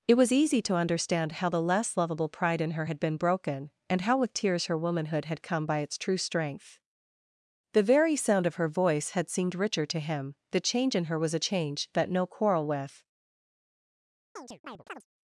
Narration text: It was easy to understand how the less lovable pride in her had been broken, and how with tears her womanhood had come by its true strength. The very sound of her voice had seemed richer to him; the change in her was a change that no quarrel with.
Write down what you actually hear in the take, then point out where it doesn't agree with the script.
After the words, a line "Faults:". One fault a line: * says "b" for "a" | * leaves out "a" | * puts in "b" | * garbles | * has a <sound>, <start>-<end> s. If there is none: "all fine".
It was easy to understand how the less lovable pride in her had been broken, and how with tears her womanhood had come by its true strength. The very sound of her voice had seemed richer to him; the change in her was a change that no quarrel with.
Faults:
* has a chirp, 14.4-15.1 s